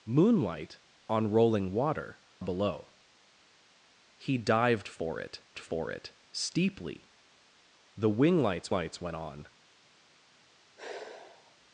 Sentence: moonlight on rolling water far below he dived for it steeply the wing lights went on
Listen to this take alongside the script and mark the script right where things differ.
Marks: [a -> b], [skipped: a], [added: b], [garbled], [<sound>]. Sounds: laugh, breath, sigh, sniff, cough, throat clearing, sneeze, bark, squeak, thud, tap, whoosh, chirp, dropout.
moonlight on rolling water [skipped: far] below he dived for it [added: for it] steeply the wing lights [added: lights] went on [sigh]